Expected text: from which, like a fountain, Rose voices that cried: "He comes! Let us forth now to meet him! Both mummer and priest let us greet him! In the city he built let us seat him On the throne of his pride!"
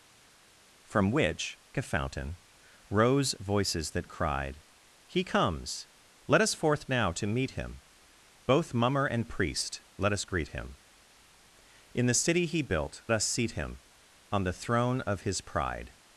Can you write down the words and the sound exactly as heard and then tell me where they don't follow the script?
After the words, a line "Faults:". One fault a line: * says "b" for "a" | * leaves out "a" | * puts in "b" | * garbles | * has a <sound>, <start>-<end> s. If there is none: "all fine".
from which, a fountain, Rose voices that cried: "He comes! Let us forth now to meet him! Both mummer and priest let us greet him! In the city he built us seat him On the throne of his pride!"
Faults:
* leaves out "like"
* leaves out "let"